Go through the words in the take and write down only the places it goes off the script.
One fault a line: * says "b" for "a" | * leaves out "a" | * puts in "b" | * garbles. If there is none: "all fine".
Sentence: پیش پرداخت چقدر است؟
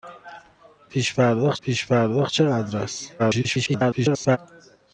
* puts in "پیش پرداخت"
* garbles